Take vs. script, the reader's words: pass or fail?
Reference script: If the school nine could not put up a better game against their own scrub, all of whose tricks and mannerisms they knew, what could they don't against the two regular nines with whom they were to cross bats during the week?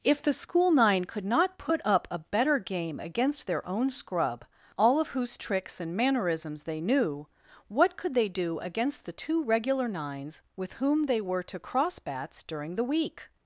fail